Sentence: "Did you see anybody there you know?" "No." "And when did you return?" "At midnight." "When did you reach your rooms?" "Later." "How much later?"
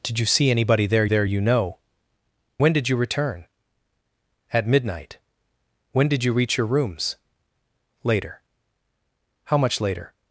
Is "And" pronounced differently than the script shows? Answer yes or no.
yes